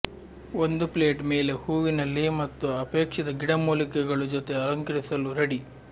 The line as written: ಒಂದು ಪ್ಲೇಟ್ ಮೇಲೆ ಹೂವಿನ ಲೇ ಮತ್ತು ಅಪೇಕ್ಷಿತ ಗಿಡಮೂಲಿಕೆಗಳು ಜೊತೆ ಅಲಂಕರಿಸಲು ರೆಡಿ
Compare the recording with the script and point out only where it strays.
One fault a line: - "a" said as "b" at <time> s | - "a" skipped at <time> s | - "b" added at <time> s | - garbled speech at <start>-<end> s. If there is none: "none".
none